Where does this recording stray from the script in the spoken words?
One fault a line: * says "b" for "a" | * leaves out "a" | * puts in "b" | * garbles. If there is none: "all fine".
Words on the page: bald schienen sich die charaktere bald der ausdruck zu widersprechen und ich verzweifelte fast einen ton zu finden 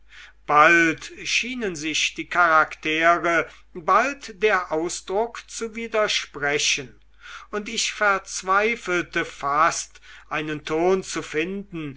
all fine